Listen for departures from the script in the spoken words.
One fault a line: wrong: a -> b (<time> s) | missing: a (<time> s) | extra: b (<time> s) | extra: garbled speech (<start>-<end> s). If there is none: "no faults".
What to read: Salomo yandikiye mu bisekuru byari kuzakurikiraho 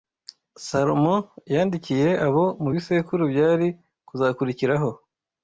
extra: abo (2.3 s)